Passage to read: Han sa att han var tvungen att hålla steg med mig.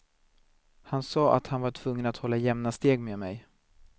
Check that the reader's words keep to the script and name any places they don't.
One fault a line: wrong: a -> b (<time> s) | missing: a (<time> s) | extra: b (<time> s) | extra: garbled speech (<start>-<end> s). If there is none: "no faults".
extra: jämna (2.4 s)